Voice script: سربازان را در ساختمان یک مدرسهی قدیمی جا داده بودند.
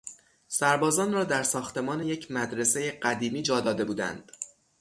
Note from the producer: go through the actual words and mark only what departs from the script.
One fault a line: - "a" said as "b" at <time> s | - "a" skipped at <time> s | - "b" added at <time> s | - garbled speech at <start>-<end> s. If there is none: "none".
none